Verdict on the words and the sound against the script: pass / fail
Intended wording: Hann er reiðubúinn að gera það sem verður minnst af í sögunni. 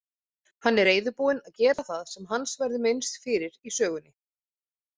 fail